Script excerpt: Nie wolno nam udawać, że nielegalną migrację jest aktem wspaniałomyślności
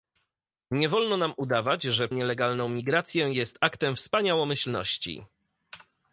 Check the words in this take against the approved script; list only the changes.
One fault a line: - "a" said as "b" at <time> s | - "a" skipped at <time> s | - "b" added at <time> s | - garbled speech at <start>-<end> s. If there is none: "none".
none